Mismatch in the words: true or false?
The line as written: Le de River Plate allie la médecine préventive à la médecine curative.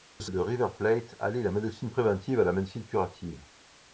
false